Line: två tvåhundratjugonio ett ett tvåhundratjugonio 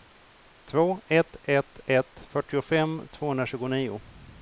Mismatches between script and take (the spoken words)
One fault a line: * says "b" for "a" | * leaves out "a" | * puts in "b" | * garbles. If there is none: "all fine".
* says "ett" for "tvåhundratjugonio"
* puts in "fyrtiofem"